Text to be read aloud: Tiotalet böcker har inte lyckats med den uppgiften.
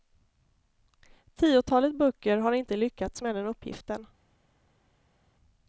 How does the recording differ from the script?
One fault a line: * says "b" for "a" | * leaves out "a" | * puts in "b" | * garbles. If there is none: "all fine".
all fine